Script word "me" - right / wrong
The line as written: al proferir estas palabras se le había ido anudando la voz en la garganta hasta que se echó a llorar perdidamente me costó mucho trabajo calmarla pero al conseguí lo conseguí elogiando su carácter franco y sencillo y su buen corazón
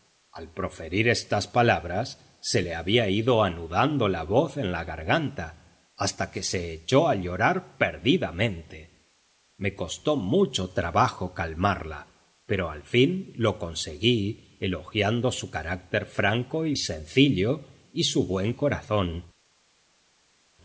right